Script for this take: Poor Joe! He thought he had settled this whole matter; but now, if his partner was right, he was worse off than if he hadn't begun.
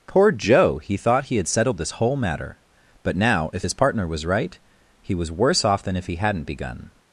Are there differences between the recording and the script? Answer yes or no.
no